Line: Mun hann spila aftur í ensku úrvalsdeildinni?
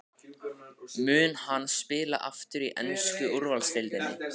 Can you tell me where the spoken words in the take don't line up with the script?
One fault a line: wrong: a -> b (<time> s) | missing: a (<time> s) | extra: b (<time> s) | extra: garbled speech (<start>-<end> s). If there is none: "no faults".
no faults